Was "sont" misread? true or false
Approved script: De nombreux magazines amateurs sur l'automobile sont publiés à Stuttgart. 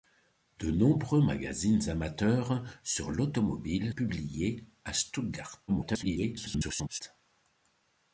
true